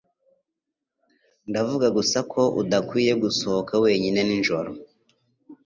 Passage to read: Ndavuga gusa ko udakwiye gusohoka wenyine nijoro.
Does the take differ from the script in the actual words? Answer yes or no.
no